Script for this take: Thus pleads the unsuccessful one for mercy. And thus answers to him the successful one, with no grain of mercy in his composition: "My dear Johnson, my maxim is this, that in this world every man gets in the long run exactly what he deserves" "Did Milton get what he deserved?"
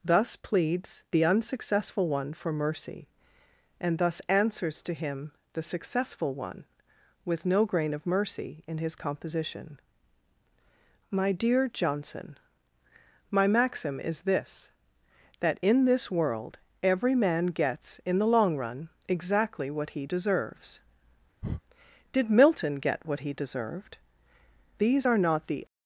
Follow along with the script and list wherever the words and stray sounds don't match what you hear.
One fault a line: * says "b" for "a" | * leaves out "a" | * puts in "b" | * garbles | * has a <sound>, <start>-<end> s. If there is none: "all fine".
* has a breath, 21.4-21.6 s
* puts in "These are not the"